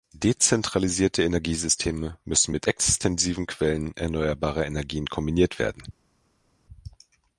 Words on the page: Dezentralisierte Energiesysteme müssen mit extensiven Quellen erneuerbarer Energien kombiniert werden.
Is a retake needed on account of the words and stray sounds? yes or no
no